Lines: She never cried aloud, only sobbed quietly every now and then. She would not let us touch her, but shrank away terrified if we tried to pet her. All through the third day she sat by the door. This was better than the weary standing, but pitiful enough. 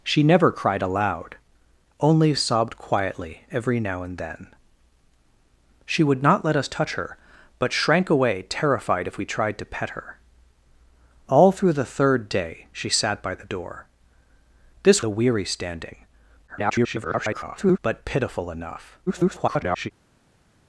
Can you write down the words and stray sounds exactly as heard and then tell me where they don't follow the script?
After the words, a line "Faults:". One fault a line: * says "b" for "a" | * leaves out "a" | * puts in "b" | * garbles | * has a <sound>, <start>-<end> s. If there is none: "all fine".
She never cried aloud, only sobbed quietly every now and then. She would not let us touch her, but shrank away terrified if we tried to pet her. All through the third day she sat by the door. This the weary standing, [garbled] but pitiful enough. [garbled]
Faults:
* leaves out "was better than"
* garbles
* garbles